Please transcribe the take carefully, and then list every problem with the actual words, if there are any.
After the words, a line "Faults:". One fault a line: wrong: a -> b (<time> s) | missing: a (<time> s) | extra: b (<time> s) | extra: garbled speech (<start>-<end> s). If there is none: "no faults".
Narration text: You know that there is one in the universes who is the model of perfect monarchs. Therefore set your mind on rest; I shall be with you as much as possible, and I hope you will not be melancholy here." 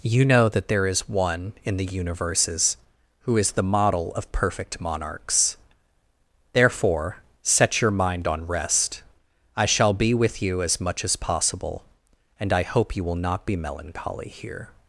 You know that there is one in the universes who is the model of perfect monarchs. Therefore set your mind on rest; I shall be with you as much as possible, and I hope you will not be melancholy here."
Faults:
no faults